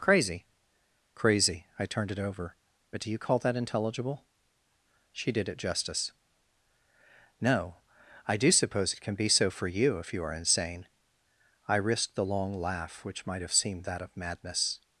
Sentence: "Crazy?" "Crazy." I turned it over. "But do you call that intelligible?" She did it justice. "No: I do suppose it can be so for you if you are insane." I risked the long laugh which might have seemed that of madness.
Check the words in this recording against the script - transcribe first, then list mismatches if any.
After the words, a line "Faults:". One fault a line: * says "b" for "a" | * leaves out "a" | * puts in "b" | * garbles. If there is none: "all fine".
"Crazy?" "Crazy." I turned it over. "But do you call that intelligible?" She did it justice. "No: I do suppose it can be so for you if you are insane." I risked the long laugh which might have seemed that of madness.
Faults:
all fine